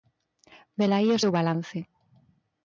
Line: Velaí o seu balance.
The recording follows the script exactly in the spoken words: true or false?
true